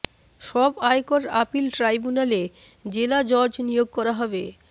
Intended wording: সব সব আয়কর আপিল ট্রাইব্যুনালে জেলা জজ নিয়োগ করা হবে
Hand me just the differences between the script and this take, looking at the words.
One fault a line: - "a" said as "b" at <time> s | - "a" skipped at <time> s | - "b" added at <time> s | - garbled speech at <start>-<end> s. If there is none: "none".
- "সব" skipped at 0.7 s